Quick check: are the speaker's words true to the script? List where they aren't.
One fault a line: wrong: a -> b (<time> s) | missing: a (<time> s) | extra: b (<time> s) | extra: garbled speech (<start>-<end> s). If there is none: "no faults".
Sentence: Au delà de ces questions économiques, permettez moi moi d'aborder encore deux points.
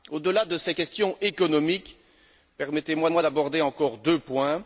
no faults